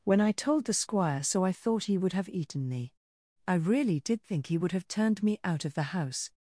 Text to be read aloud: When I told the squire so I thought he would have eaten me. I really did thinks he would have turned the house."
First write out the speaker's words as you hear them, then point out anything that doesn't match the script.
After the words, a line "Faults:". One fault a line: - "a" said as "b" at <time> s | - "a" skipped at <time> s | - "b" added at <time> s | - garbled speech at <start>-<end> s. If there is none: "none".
When I told the squire so I thought he would have eaten me. I really did think he would have turned me out of the house."
Faults:
- "thinks" said as "think" at 4.2 s
- "me out of" added at 5.2 s